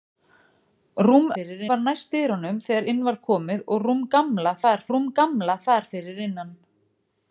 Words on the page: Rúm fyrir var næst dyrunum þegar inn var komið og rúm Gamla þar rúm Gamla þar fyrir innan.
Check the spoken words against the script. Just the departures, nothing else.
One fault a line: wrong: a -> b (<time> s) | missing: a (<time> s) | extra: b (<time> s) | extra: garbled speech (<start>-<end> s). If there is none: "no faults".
no faults